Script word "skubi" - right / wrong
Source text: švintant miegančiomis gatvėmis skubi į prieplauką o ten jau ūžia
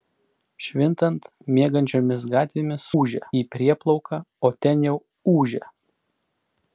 wrong